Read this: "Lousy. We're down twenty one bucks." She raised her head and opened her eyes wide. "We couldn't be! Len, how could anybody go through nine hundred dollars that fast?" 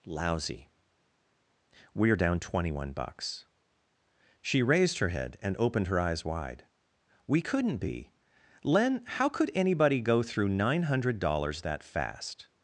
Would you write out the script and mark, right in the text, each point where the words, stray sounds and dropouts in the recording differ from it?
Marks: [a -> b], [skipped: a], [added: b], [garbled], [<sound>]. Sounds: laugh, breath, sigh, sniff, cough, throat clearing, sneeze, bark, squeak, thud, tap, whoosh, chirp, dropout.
"Lousy. We're down twenty one bucks." She raised her head and opened her eyes wide. "We couldn't be! Len, how could anybody go through nine hundred dollars that fast?"